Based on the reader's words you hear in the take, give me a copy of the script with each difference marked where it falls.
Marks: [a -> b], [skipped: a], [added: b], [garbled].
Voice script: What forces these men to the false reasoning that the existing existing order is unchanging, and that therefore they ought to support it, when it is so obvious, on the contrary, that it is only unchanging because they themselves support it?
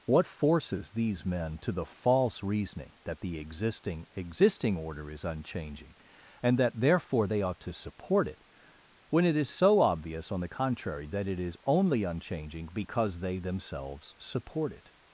What forces these men to the false reasoning that the existing existing order is unchanging, and that therefore they ought to support it, when it is so obvious, on the contrary, that it is only unchanging because they themselves support it?